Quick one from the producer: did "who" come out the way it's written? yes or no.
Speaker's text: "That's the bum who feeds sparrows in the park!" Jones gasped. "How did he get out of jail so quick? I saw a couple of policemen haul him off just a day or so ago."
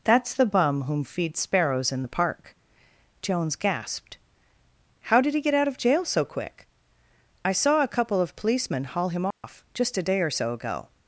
no